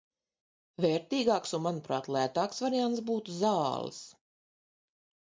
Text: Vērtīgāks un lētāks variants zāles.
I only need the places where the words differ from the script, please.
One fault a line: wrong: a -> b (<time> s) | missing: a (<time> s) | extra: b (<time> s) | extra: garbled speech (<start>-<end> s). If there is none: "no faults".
extra: manuprāt (1.6 s)
extra: būtu (3.1 s)